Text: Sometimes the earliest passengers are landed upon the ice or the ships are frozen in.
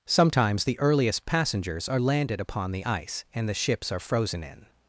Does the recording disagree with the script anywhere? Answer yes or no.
yes